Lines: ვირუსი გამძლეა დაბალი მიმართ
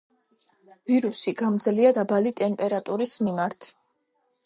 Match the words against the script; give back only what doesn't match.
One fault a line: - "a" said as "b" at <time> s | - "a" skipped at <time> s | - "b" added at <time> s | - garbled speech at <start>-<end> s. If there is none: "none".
- "ტემპერატურის" added at 2.4 s